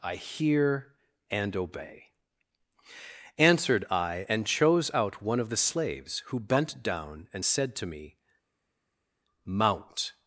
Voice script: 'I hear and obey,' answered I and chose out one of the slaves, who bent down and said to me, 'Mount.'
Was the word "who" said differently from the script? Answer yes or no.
no